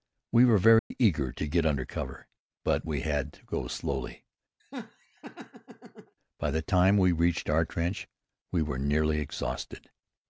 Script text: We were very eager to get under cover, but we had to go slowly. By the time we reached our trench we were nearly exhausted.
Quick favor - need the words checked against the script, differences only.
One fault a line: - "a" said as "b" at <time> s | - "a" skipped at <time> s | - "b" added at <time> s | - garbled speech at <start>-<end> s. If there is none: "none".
none